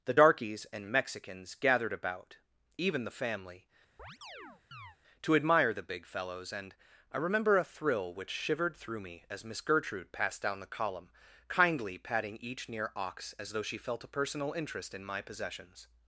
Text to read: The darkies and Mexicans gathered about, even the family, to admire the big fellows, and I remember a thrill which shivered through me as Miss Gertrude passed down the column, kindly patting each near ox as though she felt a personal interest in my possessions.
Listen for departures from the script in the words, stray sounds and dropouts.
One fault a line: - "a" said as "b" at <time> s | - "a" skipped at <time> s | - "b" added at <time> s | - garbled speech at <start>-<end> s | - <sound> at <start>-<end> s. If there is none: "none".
- chirp at 4.0-5.0 s